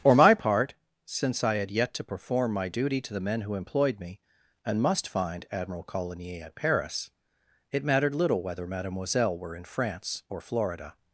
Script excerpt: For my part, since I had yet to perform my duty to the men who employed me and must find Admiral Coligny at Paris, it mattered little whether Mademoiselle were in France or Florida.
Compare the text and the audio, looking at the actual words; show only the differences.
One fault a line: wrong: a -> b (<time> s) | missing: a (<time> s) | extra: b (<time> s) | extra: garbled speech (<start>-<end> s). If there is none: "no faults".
no faults